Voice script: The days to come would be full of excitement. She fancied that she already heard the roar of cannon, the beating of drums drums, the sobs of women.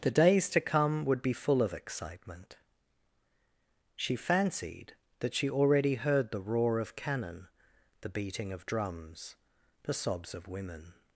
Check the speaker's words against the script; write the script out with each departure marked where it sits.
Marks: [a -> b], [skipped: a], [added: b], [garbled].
The days to come would be full of excitement. She fancied that she already heard the roar of cannon, the beating of drums [skipped: drums,] the sobs of women.